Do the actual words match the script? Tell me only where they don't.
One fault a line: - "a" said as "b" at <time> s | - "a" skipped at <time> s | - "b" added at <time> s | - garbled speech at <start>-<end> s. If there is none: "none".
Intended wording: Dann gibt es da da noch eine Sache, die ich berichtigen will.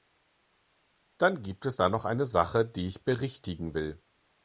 - "da" skipped at 1.9 s